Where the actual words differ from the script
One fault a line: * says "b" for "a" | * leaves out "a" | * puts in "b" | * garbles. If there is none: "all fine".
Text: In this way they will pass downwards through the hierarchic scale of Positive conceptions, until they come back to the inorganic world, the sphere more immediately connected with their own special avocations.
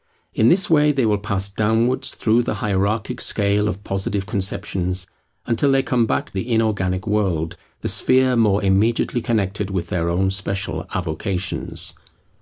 * leaves out "to"